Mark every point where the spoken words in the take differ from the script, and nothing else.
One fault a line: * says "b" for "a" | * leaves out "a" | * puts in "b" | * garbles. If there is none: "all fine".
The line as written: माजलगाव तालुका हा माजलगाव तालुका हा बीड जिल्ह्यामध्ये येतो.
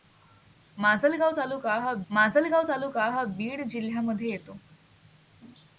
all fine